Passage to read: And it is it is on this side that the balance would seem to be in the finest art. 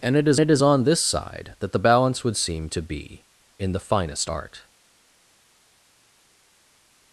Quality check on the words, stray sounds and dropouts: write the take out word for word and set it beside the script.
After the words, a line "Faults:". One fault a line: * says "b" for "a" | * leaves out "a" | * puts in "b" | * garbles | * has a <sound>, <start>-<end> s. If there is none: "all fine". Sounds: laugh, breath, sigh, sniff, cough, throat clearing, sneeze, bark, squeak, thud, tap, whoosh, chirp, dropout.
And it is it is on this side that the balance would seem to be in the finest art.
Faults:
all fine